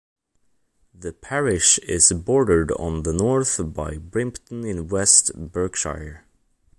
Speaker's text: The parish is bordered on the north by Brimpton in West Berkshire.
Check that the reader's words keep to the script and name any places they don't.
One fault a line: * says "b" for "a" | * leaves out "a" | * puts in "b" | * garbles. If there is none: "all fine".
all fine